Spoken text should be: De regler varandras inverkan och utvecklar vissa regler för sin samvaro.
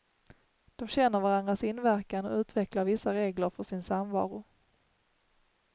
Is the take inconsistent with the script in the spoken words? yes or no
yes